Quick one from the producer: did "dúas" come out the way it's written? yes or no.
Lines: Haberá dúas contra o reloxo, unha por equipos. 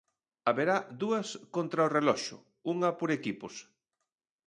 yes